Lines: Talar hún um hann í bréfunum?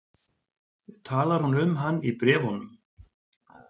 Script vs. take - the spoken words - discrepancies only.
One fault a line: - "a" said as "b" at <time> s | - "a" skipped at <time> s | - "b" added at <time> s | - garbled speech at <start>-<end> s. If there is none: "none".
none